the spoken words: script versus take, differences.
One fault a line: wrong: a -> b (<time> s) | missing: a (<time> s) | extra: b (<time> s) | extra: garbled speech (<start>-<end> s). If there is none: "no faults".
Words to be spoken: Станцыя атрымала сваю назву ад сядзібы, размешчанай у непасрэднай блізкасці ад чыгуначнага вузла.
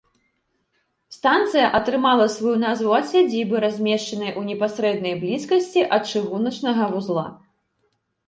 no faults